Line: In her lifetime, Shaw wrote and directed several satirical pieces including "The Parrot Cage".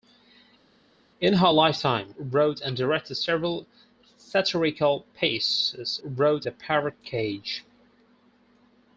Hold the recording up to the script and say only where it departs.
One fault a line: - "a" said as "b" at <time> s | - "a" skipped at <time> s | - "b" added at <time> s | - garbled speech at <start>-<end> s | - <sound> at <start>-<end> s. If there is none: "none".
- "Shaw" skipped at 2.1 s
- "including" said as "wrote" at 6.0 s